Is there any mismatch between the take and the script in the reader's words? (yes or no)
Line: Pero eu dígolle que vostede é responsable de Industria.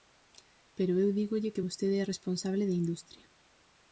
no